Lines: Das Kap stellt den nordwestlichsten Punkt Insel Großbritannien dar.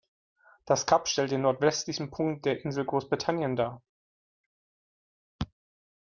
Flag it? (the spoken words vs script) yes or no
yes